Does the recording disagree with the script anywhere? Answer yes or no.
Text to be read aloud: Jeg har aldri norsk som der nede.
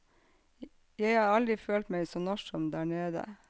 yes